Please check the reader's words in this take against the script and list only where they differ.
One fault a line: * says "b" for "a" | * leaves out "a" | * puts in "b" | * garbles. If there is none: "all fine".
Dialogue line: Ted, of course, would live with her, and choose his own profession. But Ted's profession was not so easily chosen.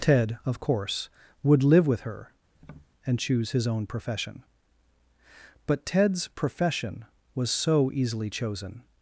* leaves out "not"